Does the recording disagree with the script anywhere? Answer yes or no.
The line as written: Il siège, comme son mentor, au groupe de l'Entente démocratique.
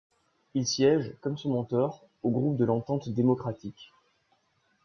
no